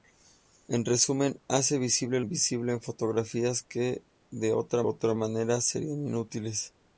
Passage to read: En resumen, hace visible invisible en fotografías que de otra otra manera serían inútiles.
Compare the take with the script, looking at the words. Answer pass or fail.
pass